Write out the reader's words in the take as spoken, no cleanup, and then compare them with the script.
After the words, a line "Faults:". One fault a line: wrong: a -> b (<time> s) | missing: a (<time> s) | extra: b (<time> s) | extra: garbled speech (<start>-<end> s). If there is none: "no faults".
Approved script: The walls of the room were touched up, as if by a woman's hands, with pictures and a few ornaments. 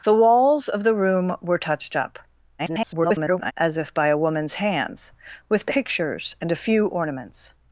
The walls of the room were touched up, [garbled] as if by a woman's hands, with pictures and a few ornaments.
Faults:
extra: garbled speech (2.6-3.5 s)